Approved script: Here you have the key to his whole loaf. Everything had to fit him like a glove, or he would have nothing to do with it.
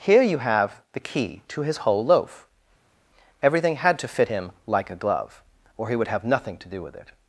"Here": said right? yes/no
yes